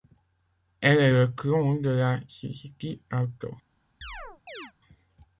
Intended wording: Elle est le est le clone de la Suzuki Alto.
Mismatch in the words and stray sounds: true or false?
true